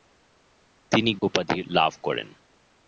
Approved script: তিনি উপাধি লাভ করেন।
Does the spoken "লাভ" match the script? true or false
true